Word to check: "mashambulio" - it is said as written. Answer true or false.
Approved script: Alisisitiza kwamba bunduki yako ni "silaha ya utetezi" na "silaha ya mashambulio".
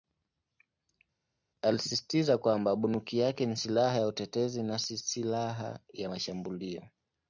true